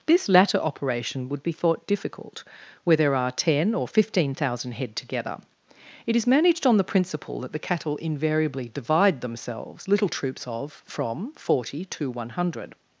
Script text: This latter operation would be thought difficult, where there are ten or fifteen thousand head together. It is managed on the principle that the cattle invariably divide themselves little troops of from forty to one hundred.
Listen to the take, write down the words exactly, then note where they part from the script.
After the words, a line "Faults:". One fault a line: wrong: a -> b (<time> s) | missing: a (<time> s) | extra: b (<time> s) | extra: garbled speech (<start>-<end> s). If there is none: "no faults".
This latter operation would be thought difficult, where there are ten or fifteen thousand head together. It is managed on the principle that the cattle invariably divide themselves little troops of from forty to one hundred.
Faults:
no faults